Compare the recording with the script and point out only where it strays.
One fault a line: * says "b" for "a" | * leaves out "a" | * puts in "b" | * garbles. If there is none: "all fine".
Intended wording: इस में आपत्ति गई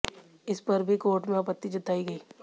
* puts in "पर भी कोर्ट"
* puts in "जताई"